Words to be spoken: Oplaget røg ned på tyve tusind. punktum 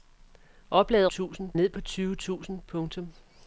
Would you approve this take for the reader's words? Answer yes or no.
no